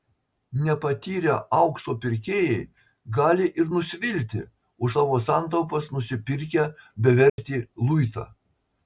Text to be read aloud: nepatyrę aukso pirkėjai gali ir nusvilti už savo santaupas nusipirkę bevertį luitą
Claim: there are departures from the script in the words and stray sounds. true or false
true